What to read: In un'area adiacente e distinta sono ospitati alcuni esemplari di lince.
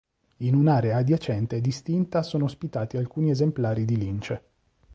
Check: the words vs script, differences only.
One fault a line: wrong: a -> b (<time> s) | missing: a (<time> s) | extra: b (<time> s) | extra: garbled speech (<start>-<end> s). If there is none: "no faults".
no faults